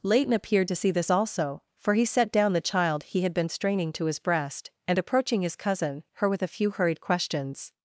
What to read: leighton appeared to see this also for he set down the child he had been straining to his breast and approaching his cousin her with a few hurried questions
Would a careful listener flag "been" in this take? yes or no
no